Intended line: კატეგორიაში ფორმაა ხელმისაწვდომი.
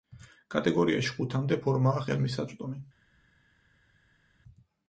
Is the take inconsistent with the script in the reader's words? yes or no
yes